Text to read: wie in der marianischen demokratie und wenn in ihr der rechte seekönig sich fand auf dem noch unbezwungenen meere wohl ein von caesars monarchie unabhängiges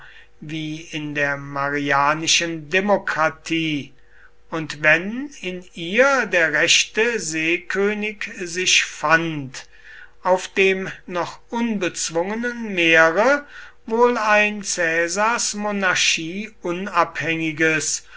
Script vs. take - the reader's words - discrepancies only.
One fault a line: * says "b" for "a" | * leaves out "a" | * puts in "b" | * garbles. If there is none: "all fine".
* leaves out "von"